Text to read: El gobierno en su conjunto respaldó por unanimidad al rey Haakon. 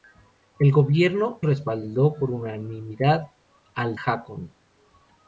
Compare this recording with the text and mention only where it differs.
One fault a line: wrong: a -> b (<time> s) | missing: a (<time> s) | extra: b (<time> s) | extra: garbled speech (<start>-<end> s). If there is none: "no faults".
missing: en su conjunto (1.4 s)
missing: rey (4.0 s)